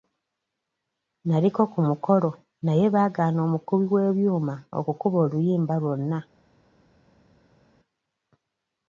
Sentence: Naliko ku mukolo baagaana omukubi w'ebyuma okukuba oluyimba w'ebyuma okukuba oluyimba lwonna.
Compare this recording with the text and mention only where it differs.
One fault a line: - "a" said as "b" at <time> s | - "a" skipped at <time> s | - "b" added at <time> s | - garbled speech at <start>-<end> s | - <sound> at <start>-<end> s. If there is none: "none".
- "naye" added at 2.7 s
- "w'ebyuma okukuba oluyimba" skipped at 5.7 s